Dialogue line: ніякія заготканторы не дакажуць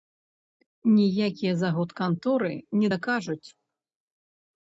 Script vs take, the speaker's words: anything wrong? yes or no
no